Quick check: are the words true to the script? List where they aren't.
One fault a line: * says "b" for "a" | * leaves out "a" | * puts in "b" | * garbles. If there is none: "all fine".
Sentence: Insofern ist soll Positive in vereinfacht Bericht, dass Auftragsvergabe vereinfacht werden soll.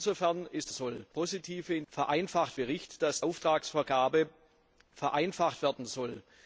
all fine